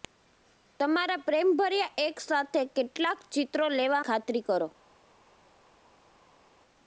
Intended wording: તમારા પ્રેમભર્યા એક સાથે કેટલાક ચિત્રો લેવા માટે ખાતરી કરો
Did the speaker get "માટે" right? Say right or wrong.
wrong